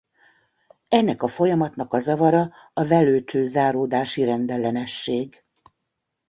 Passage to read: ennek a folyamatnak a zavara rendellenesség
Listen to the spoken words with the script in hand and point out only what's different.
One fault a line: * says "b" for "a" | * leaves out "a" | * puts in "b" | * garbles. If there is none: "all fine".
* puts in "a velőcső záródási"